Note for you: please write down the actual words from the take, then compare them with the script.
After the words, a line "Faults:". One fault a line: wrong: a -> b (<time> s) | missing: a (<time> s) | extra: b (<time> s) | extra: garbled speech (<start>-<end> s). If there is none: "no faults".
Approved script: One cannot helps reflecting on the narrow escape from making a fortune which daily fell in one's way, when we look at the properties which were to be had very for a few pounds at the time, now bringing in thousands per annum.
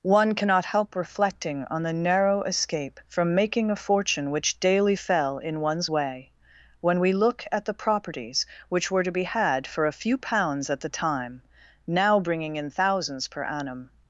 One cannot help reflecting on the narrow escape from making a fortune which daily fell in one's way, when we look at the properties which were to be had for a few pounds at the time, now bringing in thousands per annum.
Faults:
wrong: helps -> help (0.7 s)
missing: very (9.7 s)